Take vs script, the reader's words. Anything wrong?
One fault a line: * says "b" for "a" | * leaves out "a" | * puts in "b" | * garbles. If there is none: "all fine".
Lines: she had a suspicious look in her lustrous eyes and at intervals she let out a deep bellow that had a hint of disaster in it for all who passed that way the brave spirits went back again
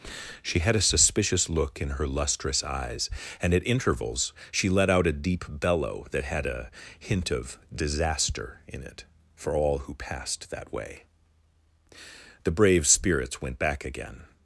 all fine